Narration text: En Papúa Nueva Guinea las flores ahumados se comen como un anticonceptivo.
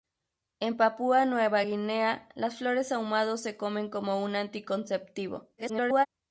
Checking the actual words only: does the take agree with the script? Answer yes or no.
no